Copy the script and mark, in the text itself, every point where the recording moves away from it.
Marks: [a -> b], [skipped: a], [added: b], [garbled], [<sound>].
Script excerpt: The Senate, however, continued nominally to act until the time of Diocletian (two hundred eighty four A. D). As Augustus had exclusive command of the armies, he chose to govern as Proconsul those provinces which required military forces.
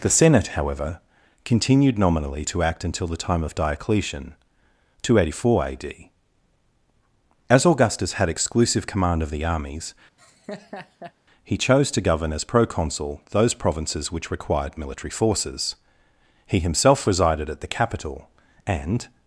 The Senate, however, continued nominally to act until the time of Diocletian (two hundred eighty four A. D). As Augustus had exclusive command of the armies, [laugh] he chose to govern as Proconsul those provinces which required military forces. [added: He himself resided at the capital and]